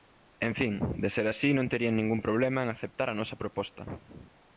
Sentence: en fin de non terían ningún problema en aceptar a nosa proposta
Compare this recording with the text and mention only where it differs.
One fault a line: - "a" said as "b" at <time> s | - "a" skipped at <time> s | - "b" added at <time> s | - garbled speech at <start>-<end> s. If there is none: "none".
- "ser así" added at 1.1 s